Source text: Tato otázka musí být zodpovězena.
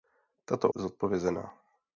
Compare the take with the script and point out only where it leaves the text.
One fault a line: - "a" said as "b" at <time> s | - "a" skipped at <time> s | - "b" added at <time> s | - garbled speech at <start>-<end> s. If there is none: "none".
- "otázka musí být" skipped at 0.7 s